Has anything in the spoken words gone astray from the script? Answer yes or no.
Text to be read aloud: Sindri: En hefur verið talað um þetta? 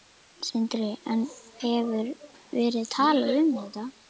no